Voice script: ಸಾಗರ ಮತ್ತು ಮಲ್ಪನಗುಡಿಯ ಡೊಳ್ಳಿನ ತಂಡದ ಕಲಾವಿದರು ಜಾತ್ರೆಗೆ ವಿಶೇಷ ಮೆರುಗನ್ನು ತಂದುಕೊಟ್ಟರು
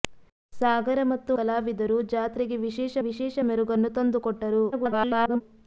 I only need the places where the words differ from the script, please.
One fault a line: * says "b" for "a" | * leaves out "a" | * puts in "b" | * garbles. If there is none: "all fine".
* leaves out "ಮಲ್ಪನಗುಡಿಯ ಡೊಳ್ಳಿನ ತಂಡದ"
* puts in "ವಿಶೇಷ"
* garbles